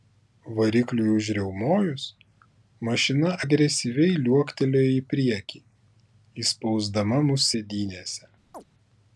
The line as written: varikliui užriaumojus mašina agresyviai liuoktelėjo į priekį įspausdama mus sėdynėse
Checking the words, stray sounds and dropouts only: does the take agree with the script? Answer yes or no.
no